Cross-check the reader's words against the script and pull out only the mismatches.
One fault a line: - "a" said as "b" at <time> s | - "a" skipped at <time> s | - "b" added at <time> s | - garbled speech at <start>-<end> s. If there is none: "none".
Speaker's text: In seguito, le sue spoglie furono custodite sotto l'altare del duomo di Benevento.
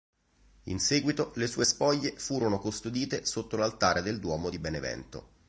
none